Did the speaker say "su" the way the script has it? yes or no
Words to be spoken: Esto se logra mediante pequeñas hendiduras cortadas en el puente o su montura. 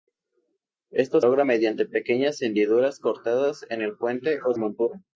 no